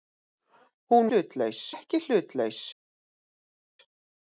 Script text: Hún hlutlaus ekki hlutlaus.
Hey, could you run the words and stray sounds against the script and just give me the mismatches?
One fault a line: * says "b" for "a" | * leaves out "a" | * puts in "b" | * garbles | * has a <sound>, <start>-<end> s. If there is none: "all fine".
all fine